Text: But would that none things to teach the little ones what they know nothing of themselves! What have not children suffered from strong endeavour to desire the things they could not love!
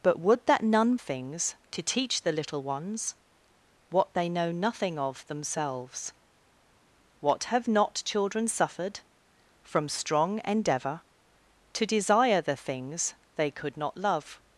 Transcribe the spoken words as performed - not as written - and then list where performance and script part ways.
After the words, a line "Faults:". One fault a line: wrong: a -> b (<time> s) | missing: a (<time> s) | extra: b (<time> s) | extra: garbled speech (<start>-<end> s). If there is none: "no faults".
But would that none things to teach the little ones what they know nothing of themselves! What have not children suffered from strong endeavour to desire the things they could not love!
Faults:
no faults